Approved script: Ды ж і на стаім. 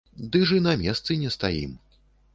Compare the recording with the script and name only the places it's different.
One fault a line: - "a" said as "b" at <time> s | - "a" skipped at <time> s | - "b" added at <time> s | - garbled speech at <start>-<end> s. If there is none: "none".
- "месцы не" added at 0.8 s